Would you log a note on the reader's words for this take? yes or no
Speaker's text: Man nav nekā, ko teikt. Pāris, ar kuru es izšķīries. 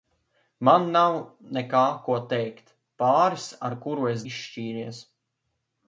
no